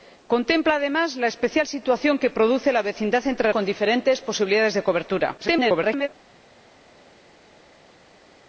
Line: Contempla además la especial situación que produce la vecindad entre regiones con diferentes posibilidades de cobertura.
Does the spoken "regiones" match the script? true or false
false